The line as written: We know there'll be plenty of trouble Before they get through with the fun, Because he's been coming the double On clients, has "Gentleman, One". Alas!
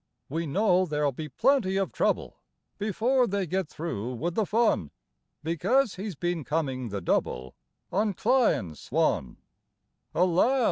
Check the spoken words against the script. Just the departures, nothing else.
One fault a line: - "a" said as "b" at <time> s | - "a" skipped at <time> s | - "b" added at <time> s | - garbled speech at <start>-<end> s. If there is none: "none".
- "has Gentleman" skipped at 8.9 s